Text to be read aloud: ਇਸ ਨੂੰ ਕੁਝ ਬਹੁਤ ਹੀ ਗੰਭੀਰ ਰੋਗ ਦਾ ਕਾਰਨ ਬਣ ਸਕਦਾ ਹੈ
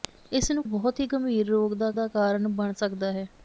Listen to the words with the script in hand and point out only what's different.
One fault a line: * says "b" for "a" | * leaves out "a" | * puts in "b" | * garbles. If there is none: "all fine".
* leaves out "ਕੁਝ"
* puts in "ਦਾ"